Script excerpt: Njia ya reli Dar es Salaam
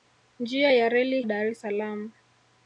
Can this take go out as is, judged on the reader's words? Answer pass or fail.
pass